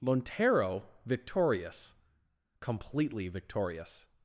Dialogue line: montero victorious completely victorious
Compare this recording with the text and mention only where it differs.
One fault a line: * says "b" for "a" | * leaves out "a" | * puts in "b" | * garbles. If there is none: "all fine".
all fine